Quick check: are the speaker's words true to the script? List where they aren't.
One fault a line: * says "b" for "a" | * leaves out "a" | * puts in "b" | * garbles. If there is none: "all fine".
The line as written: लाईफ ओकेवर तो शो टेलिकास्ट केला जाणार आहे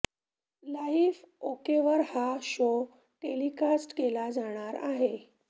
* says "हा" for "तो"